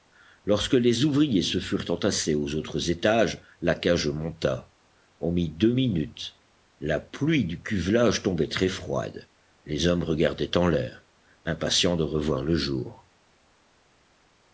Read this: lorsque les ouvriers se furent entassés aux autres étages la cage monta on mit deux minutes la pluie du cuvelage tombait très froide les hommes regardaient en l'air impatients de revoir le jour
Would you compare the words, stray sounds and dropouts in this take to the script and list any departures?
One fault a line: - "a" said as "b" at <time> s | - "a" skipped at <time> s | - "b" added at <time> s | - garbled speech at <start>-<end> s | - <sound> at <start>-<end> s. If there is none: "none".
none